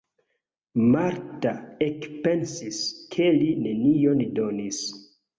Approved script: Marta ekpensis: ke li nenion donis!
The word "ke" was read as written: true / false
true